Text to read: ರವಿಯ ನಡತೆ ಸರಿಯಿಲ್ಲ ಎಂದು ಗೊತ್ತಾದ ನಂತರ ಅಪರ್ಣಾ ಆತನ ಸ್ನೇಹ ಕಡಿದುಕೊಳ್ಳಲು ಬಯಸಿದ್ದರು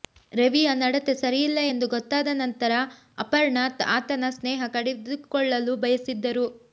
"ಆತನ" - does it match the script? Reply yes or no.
yes